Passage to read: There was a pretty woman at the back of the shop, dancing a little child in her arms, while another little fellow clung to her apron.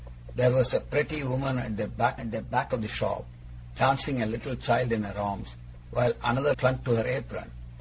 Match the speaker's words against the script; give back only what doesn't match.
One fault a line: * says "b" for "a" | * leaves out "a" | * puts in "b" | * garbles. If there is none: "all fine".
* puts in "at the back"
* leaves out "little fellow"